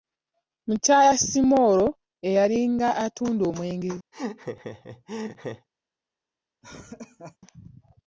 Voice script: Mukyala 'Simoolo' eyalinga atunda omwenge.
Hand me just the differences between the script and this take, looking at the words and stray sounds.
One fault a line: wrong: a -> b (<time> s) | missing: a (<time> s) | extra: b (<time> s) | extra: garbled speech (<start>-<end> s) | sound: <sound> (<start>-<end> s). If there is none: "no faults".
sound: laugh (4.1-5.7 s)
sound: laugh (6.6-7.4 s)